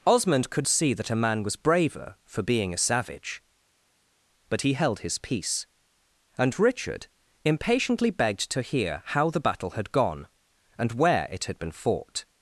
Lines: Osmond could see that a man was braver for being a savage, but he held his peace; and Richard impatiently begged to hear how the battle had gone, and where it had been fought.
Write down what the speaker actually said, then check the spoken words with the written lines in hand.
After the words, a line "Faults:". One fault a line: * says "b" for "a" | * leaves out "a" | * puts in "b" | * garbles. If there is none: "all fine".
Osmond could see that a man was braver for being a savage, but he held his peace; and Richard impatiently begged to hear how the battle had gone, and where it had been fought.
Faults:
all fine